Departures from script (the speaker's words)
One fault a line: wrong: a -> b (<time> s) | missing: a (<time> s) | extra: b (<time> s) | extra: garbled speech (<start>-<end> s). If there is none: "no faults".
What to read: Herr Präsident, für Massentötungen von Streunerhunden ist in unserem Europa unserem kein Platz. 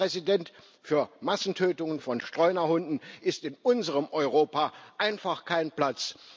wrong: unserem -> einfach (5.0 s)